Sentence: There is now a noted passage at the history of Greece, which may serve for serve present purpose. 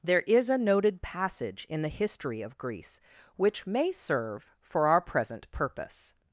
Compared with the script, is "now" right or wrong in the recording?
wrong